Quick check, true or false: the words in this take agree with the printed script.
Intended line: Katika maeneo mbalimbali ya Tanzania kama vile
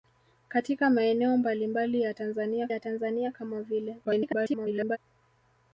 false